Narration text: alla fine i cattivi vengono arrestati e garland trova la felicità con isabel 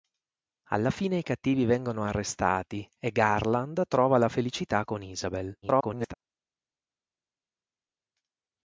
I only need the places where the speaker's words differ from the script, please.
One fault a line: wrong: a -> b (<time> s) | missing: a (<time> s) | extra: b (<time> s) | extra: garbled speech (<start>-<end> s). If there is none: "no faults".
extra: garbled speech (5.6-6.1 s)